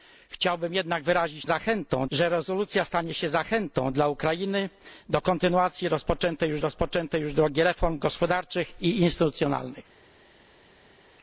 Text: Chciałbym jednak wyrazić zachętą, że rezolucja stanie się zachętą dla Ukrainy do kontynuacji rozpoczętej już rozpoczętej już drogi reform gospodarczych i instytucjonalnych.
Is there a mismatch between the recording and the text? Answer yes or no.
no